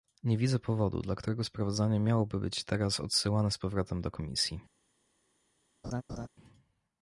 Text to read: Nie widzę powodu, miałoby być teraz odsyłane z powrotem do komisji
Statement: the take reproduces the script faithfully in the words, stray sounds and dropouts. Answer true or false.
false